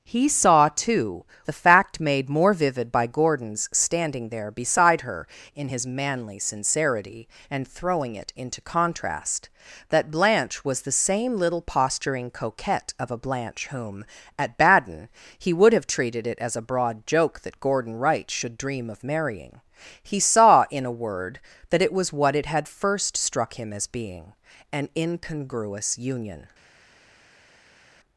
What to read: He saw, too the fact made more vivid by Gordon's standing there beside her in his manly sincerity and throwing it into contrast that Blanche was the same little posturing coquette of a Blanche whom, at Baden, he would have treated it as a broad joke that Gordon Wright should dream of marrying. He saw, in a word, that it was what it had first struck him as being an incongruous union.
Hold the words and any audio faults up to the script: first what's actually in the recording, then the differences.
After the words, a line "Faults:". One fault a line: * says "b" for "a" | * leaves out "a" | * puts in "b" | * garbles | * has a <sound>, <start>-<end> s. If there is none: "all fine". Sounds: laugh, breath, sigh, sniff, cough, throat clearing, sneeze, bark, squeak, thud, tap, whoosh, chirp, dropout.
He saw, too the fact made more vivid by Gordon's standing there beside her in his manly sincerity and throwing it into contrast that Blanche was the same little posturing coquette of a Blanche whom, at Baden, he would have treated it as a broad joke that Gordon Wright should dream of marrying. He saw, in a word, that it was what it had first struck him as being an incongruous union.
Faults:
all fine